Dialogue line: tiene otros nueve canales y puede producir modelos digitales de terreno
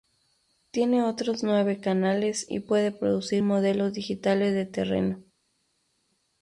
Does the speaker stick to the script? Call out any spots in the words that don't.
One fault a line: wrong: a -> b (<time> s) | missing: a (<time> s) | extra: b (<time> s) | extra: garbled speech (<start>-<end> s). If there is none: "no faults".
no faults